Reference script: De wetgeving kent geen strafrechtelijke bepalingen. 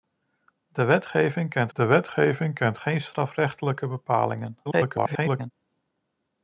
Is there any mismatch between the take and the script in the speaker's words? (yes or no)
yes